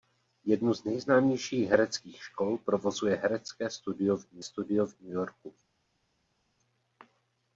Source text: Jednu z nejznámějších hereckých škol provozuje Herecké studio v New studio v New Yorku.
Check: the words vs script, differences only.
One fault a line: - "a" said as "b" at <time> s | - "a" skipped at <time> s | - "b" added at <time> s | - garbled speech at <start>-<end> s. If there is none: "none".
none